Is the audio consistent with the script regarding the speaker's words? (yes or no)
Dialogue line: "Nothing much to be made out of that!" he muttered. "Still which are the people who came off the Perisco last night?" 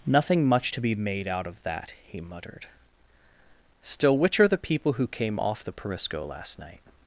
yes